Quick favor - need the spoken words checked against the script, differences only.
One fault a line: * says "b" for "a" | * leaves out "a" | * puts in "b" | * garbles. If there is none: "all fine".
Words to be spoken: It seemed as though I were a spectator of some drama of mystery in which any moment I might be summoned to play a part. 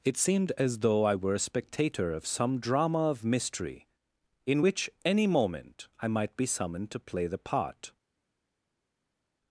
* says "the" for "a"